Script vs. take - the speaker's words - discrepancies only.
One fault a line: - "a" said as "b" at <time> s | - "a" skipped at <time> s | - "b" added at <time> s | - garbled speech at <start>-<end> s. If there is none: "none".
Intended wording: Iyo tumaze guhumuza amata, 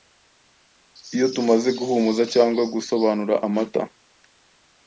- "cyangwa gusobanura" added at 2.3 s